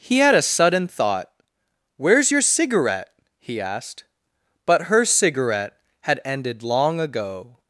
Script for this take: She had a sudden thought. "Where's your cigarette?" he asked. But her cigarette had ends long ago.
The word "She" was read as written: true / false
false